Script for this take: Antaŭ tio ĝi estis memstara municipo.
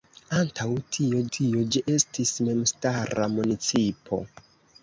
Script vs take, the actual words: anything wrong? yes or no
yes